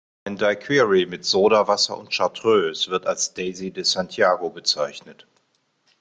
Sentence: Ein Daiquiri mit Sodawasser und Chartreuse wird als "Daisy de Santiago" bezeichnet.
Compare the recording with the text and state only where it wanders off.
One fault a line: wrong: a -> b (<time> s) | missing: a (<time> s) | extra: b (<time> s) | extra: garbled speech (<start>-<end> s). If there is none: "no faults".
no faults